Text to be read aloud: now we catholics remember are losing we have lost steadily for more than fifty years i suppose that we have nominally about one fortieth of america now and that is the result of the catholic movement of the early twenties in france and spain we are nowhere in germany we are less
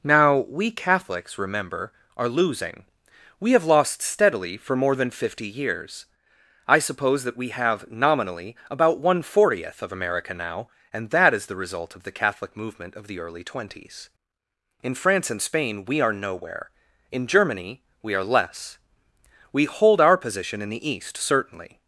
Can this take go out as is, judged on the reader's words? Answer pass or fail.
fail